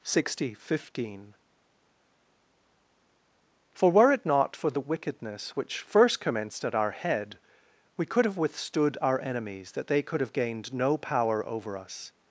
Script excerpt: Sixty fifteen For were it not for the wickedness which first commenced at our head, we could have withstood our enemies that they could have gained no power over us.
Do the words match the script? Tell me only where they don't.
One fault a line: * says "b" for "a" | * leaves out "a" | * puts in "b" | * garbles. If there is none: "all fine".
all fine